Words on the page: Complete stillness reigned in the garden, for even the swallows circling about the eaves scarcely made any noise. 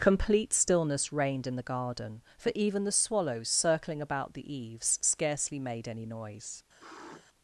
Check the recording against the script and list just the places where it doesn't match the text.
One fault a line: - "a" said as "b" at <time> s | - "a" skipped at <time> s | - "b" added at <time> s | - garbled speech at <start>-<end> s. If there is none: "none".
none